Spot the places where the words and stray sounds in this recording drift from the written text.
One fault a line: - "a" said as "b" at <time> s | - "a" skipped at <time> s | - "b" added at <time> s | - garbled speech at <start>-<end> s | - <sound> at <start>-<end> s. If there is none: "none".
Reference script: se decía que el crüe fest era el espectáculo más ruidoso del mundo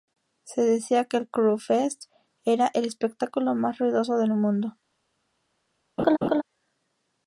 - laugh at 6.0-6.4 s